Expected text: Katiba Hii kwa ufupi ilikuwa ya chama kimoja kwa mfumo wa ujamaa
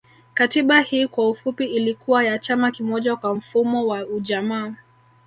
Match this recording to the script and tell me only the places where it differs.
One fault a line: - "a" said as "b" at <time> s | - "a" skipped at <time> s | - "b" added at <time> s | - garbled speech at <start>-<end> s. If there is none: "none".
none